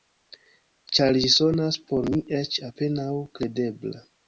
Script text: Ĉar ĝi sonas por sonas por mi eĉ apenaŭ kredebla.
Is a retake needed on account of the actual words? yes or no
yes